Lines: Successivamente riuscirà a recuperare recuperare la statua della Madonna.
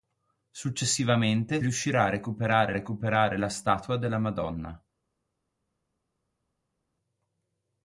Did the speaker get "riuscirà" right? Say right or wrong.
right